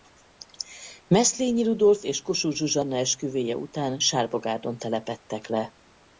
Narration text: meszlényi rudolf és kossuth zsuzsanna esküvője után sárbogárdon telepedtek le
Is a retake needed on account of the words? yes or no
no